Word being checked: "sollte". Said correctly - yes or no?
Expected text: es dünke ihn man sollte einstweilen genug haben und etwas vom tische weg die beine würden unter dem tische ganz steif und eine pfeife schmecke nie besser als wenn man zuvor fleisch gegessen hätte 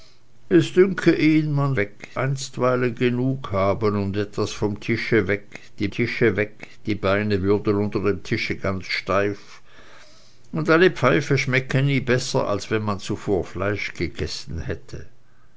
no